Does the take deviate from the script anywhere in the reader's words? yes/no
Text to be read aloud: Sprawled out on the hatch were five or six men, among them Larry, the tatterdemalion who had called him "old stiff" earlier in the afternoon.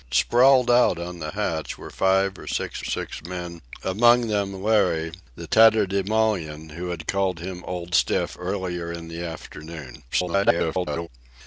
yes